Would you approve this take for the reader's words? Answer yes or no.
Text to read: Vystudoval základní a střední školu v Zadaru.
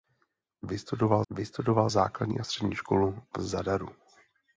no